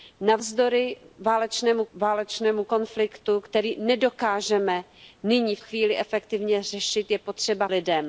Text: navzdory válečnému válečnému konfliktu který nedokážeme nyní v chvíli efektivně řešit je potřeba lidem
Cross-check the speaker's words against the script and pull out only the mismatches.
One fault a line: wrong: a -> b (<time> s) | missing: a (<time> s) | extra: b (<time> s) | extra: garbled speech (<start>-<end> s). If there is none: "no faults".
no faults